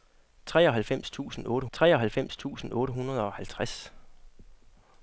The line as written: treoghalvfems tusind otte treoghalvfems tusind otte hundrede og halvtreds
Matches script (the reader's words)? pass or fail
pass